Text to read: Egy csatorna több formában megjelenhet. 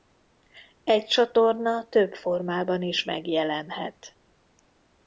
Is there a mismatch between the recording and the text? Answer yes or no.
yes